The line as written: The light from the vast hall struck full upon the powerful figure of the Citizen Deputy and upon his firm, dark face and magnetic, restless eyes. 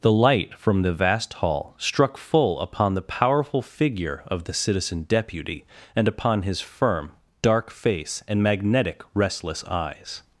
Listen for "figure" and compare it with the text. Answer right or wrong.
right